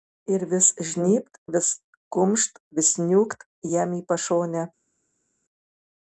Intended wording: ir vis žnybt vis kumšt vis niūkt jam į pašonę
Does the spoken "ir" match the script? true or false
true